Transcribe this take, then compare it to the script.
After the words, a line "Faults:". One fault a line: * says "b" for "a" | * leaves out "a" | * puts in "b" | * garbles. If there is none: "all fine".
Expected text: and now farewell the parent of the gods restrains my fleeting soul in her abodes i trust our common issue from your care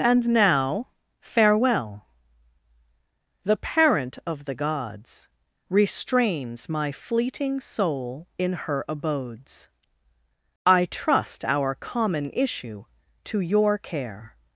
and now farewell the parent of the gods restrains my fleeting soul in her abodes i trust our common issue to your care
Faults:
* says "to" for "from"